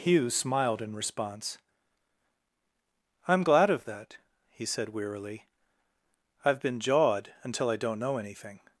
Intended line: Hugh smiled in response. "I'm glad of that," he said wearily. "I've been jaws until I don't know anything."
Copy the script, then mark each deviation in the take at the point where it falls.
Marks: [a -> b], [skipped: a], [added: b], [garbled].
Hugh smiled in response. "I'm glad of that," he said wearily. "I've been [jaws -> jawed] until I don't know anything."